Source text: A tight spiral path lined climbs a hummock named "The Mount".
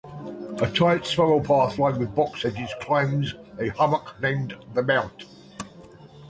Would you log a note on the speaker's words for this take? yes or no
yes